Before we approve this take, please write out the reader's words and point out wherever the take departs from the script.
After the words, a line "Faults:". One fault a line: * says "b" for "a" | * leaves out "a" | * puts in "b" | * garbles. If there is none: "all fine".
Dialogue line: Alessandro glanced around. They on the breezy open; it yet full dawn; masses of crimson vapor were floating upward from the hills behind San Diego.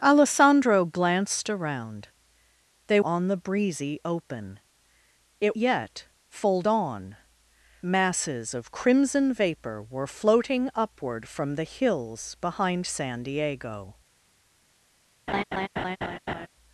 Alessandro glanced around. They on the breezy open; it yet full dawn; masses of crimson vapor were floating upward from the hills behind San Diego.
Faults:
all fine